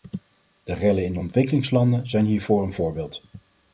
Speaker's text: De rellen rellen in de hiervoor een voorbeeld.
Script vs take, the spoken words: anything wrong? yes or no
yes